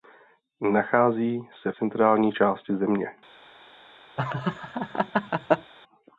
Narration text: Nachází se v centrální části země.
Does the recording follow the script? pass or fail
fail